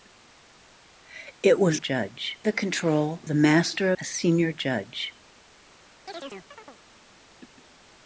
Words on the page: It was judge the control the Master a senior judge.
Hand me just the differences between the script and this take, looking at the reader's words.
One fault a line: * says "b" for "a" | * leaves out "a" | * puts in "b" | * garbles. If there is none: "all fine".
all fine